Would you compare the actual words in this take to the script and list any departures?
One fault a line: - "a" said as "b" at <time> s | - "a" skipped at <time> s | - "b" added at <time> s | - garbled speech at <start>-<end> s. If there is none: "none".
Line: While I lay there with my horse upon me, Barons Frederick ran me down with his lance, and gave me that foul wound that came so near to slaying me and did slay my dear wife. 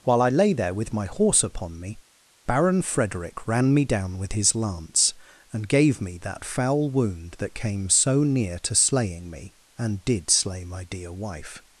- "Barons" said as "Baron" at 2.5 s